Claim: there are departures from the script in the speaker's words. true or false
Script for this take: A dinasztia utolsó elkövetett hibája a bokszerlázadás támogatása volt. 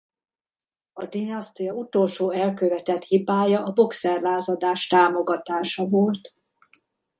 false